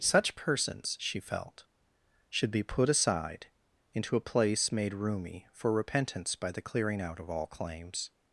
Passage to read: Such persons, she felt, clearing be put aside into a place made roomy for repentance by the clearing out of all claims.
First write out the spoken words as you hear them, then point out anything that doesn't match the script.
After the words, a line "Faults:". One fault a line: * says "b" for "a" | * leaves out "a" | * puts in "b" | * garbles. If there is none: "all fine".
Such persons, she felt, should be put aside into a place made roomy for repentance by the clearing out of all claims.
Faults:
* says "should" for "clearing"